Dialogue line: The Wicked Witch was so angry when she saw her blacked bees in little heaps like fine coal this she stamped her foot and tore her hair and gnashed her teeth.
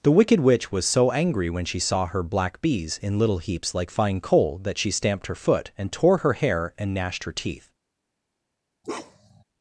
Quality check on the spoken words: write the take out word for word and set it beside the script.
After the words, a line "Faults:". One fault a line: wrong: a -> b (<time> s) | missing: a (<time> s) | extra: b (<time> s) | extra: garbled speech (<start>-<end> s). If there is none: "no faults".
The Wicked Witch was so angry when she saw her black bees in little heaps like fine coal that she stamped her foot and tore her hair and gnashed her teeth.
Faults:
wrong: blacked -> black (2.2 s)
wrong: this -> that (4.6 s)